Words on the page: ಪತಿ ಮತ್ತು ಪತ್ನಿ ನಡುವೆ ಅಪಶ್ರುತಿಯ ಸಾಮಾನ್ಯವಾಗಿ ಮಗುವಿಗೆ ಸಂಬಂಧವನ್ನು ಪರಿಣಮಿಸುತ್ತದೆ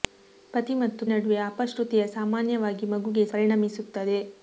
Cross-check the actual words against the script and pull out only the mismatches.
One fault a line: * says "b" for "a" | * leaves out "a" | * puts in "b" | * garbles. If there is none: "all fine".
* leaves out "ಪತ್ನಿ"
* leaves out "ಸಂಬಂಧವನ್ನು"